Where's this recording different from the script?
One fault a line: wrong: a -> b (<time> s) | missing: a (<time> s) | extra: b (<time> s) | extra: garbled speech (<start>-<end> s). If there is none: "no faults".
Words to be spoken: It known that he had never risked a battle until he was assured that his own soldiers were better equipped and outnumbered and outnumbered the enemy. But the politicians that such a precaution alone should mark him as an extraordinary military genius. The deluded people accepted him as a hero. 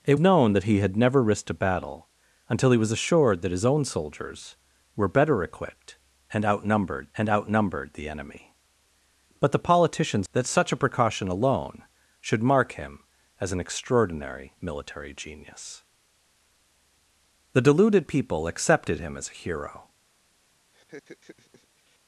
no faults